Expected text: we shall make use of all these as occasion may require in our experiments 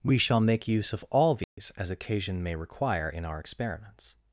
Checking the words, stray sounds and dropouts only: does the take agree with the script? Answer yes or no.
no